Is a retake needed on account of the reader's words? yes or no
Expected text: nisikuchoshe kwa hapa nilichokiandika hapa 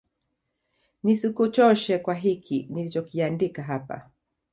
yes